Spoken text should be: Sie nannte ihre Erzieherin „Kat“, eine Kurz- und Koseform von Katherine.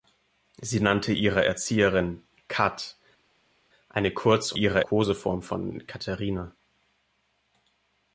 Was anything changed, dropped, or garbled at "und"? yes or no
yes